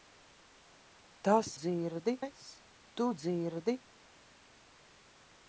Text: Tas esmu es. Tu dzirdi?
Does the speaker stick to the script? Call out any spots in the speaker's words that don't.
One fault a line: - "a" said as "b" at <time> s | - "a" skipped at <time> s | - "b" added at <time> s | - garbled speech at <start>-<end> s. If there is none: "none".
- "esmu" said as "dzirdi" at 1.6 s